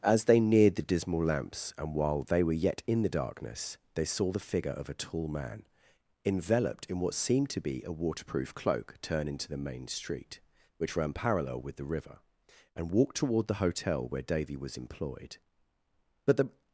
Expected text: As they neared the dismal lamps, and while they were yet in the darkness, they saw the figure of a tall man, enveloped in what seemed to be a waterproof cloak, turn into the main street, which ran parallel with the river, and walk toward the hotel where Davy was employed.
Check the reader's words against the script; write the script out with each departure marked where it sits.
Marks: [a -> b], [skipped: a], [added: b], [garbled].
As they neared the dismal lamps, and while they were yet in the darkness, they saw the figure of a tall man, enveloped in what seemed to be a waterproof cloak, turn into the main street, which ran parallel with the river, and walk toward the hotel where Davy was employed. [added: But the]